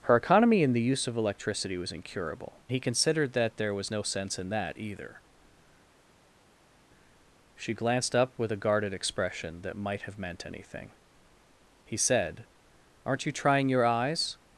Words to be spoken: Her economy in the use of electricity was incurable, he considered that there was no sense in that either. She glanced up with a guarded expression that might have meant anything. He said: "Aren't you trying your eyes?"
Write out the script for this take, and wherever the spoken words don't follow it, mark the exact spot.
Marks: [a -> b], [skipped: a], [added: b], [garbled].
Her economy in the use of electricity was incurable, he considered that there was no sense in that either. She glanced up with a guarded expression that might have meant anything. He said: "Aren't you trying your eyes?"